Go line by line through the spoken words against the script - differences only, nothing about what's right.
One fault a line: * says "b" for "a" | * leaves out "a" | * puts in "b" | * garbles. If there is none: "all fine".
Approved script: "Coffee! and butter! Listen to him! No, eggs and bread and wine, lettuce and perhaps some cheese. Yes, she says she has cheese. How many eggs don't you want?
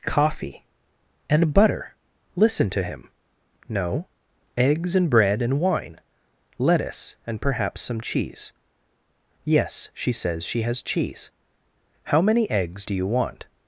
* says "do" for "don't"